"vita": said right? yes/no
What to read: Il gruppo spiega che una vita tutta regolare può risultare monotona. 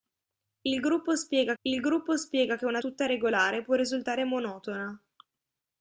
no